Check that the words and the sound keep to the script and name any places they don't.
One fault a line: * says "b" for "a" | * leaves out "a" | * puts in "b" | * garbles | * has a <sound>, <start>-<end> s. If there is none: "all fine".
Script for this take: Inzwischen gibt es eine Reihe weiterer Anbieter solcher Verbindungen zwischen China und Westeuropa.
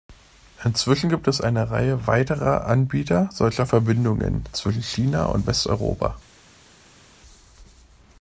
all fine